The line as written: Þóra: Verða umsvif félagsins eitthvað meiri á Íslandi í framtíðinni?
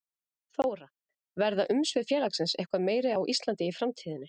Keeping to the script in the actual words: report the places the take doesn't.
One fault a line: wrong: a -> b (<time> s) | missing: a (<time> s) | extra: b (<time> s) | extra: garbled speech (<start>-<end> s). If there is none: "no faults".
no faults